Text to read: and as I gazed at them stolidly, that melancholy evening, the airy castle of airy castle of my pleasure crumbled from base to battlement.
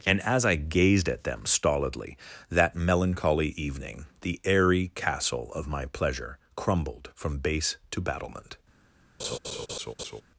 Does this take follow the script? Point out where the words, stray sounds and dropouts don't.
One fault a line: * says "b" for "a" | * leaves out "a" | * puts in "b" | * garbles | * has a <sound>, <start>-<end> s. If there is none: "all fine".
* leaves out "airy castle of"
* has a laugh, 9.2-10.2 s